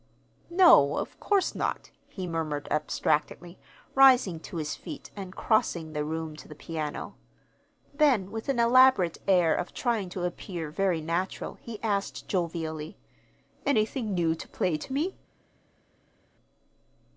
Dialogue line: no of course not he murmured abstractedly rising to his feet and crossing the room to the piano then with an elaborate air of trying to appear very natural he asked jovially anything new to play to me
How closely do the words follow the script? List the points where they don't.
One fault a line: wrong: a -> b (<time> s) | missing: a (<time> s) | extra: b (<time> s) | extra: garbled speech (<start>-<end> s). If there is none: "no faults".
no faults